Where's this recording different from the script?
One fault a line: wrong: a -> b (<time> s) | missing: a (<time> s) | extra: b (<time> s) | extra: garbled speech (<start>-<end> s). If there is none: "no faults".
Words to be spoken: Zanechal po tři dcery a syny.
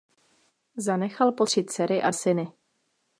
no faults